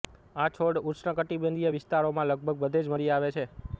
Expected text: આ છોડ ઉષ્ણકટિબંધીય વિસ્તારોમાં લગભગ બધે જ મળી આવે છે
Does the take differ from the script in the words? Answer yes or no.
no